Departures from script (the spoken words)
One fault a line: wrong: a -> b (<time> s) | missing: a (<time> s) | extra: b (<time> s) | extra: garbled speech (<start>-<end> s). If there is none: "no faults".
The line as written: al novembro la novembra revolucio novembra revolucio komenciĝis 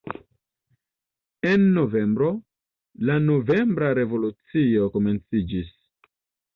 wrong: al -> en (1.5 s)
missing: novembra revolucio (4.9 s)